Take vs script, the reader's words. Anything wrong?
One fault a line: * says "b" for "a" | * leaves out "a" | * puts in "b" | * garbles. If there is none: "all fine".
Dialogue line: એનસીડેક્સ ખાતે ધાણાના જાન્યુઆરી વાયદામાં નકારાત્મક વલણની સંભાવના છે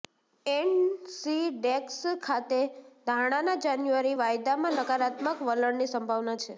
all fine